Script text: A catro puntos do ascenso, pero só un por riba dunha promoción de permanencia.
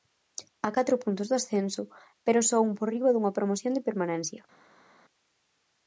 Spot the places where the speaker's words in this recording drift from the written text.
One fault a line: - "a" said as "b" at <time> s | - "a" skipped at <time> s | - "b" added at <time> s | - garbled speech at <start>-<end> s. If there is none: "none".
none